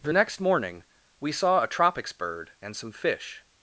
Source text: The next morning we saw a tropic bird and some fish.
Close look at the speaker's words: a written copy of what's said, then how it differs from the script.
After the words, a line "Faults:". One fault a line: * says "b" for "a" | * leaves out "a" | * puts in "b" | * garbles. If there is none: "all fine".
The next morning we saw a tropics bird and some fish.
Faults:
* says "tropics" for "tropic"